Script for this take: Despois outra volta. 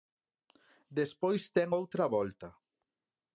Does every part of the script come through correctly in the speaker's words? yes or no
no